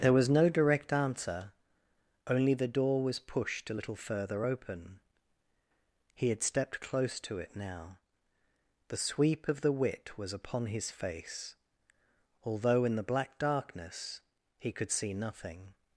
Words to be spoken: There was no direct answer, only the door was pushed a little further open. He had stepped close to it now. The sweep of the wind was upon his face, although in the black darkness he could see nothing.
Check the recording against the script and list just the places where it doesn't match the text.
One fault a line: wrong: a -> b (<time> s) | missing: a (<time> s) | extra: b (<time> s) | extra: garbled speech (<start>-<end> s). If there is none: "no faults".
wrong: wind -> wit (9.7 s)